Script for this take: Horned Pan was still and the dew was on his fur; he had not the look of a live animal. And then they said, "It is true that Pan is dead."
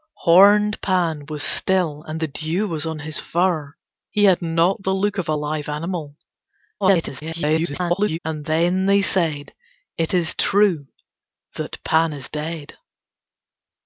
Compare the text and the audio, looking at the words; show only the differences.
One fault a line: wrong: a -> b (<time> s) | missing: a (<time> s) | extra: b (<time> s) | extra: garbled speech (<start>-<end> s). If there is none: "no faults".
extra: garbled speech (6.8-8.2 s)